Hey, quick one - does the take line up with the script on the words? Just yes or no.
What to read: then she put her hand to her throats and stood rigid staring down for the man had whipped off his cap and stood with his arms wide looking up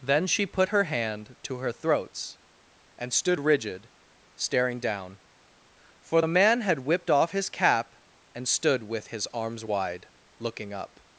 yes